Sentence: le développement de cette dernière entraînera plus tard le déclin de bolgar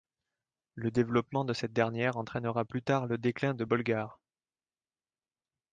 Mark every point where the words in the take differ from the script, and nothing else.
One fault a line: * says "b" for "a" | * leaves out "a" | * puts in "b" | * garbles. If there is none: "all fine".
all fine